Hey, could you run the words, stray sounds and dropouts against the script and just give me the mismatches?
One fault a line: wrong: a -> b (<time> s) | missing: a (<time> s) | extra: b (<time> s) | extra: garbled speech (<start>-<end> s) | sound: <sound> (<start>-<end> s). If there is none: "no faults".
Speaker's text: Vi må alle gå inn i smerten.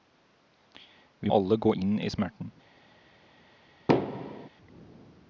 missing: må (1.3 s)
sound: thud (3.9-4.5 s)